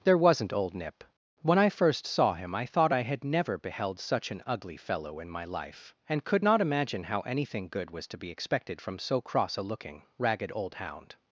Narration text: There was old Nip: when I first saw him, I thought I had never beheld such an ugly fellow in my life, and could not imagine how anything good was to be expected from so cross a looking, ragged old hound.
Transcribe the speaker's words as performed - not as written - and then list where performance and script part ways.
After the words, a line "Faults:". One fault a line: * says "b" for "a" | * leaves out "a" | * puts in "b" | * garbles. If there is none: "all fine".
There wasn't old Nip: when I first saw him, I thought I had never beheld such an ugly fellow in my life, and could not imagine how anything good was to be expected from so cross a looking, ragged old hound.
Faults:
* says "wasn't" for "was"